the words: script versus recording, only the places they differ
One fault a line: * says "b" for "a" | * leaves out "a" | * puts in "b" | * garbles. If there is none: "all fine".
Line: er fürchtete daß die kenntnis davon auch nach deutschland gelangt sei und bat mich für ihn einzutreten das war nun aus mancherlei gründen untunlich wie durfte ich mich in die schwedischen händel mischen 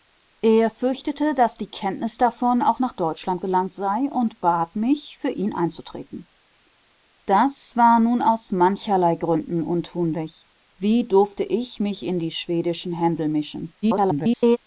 * garbles